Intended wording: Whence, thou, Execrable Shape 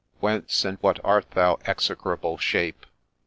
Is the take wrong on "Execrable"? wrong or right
right